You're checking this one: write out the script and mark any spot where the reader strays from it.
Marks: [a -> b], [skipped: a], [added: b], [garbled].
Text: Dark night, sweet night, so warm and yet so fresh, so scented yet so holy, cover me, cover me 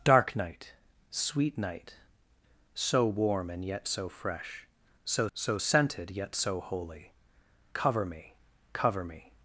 Dark night, sweet night, so warm and yet so fresh, so [added: so] scented yet so holy, cover me, cover me